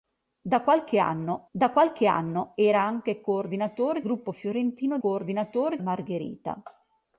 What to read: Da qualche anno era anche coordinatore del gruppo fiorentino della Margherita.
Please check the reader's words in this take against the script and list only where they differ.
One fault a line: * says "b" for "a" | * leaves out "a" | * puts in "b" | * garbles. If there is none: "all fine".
* puts in "da qualche anno"
* leaves out "del"
* says "coordinatore" for "della"